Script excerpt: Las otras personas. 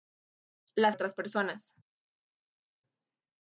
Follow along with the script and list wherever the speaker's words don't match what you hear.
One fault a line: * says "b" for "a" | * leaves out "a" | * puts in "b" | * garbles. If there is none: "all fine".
all fine